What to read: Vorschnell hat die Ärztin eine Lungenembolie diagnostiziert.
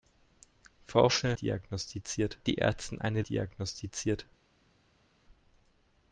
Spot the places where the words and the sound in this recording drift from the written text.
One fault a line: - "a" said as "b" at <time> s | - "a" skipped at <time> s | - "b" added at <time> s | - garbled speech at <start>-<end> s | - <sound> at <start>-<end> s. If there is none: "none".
- "hat" said as "diagnostiziert" at 1.3 s
- "Lungenembolie" skipped at 3.2 s